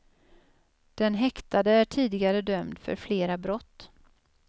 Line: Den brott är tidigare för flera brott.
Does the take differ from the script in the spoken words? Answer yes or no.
yes